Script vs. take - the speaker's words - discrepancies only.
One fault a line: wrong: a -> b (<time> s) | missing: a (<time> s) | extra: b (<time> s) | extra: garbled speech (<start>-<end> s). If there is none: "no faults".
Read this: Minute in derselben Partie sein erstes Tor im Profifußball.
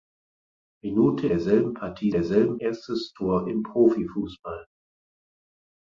missing: in (1.3 s)
wrong: sein -> derselben (2.1 s)